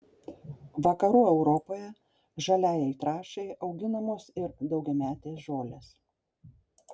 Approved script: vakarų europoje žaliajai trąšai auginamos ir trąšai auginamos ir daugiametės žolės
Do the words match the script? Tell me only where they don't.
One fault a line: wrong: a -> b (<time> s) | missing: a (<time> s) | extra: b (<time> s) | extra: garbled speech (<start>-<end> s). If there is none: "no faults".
missing: trąšai auginamos ir (4.6 s)